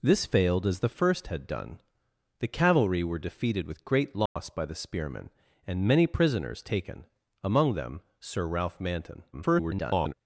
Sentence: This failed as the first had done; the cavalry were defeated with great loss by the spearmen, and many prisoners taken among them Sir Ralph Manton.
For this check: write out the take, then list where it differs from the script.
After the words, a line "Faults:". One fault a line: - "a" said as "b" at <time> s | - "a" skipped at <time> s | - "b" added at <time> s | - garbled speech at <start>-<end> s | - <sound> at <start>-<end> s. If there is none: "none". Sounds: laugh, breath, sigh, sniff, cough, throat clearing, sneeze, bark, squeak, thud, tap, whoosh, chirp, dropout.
This failed as the first had done; the cavalry were defeated with great loss by the spearmen, and many prisoners taken among them Sir Ralph Manton. [garbled]
Faults:
- dropout at 4.3-4.4 s
- garbled speech at 9.3-10.1 s